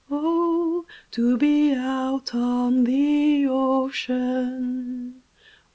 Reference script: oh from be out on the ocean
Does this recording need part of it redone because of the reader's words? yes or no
yes